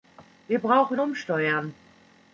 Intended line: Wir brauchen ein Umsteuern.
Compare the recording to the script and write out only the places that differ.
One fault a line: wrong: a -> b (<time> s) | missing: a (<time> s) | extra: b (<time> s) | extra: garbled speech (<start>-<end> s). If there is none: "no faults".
missing: ein (1.0 s)